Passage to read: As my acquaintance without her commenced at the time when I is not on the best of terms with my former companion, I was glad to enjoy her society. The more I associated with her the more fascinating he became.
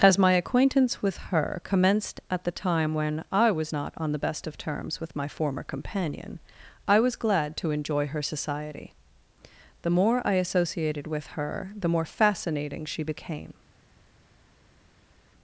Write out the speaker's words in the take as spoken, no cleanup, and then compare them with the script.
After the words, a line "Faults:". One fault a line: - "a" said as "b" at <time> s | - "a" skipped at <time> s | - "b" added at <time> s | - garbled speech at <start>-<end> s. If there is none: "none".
As my acquaintance with her commenced at the time when I was not on the best of terms with my former companion, I was glad to enjoy her society. The more I associated with her the more fascinating she became.
Faults:
- "without" said as "with" at 1.0 s
- "is" said as "was" at 3.5 s
- "he" said as "she" at 12.8 s